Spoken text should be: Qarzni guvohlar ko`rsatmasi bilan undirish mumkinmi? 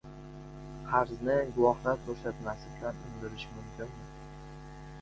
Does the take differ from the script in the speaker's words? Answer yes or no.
no